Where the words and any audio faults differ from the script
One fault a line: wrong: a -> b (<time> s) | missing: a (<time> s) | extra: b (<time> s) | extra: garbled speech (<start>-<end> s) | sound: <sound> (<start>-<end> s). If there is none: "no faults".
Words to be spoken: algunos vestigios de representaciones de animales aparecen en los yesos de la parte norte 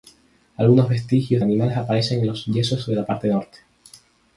missing: de representaciones de (1.4 s)